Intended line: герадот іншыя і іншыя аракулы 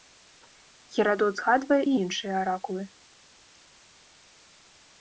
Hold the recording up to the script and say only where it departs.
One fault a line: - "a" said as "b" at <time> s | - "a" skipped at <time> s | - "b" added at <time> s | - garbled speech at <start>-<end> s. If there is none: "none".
- "іншыя" said as "згадвае" at 1.4 s